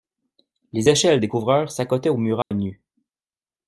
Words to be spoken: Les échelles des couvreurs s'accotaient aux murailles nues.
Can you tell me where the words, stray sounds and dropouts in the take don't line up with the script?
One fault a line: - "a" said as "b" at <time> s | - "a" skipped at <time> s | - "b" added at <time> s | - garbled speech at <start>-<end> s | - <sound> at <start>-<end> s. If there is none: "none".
- dropout at 2.4-2.5 s